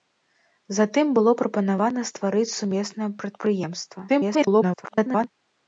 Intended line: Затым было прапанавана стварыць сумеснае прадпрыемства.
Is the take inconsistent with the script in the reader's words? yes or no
yes